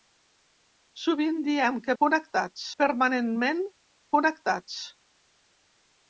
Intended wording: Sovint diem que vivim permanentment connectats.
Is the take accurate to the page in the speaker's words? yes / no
no